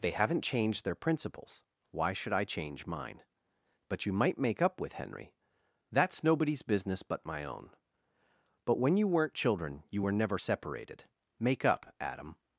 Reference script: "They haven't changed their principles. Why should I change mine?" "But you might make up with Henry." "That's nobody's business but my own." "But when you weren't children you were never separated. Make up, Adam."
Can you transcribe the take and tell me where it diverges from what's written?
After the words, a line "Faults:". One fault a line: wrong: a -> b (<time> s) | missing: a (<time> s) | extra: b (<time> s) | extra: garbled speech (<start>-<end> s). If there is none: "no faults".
"They haven't changed their principles. Why should I change mine?" "But you might make up with Henry." "That's nobody's business but my own." "But when you weren't children you were never separated. Make up, Adam."
Faults:
no faults